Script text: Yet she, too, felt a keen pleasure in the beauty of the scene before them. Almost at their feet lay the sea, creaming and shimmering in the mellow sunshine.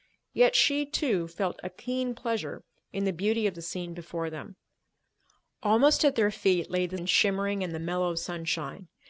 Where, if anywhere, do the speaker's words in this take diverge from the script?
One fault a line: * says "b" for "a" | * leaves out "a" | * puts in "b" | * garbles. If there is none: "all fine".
* leaves out "sea creaming"